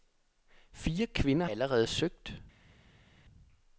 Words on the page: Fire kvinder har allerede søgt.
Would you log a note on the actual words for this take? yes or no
yes